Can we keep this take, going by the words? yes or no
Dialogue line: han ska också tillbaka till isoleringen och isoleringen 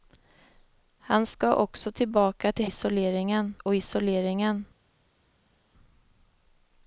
yes